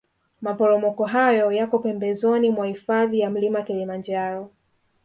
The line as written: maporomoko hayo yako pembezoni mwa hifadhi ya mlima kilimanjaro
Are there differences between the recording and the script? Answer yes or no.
no